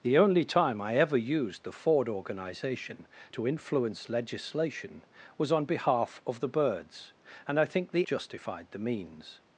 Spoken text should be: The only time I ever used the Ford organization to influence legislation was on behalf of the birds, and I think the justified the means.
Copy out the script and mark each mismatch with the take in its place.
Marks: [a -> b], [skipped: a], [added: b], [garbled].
The only time I ever used the Ford organization to influence legislation was on behalf of the birds, and I think the justified the means.